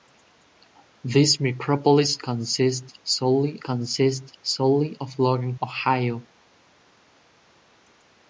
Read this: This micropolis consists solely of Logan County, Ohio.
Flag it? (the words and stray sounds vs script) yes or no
yes